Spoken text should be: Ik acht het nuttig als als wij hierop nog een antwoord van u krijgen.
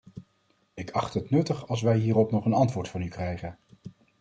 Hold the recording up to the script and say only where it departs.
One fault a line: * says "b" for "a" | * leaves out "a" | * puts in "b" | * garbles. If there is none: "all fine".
* leaves out "als"